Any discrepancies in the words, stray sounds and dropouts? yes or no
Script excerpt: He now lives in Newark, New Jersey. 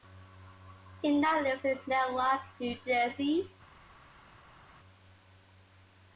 no